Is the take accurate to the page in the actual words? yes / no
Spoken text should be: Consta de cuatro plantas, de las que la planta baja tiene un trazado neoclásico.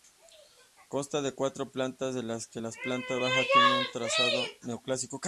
yes